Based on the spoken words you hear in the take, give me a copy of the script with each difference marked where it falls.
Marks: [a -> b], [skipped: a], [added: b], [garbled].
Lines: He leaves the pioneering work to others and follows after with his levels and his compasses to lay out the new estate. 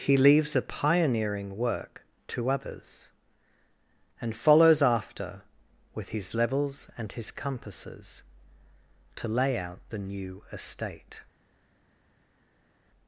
He leaves [the -> a] pioneering work to others and follows after with his levels and his compasses to lay out the new estate.